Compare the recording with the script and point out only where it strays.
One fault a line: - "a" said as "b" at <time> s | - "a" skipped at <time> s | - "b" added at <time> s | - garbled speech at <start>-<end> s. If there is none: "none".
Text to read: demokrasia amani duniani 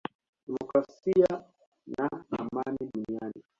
- "na" added at 1.9 s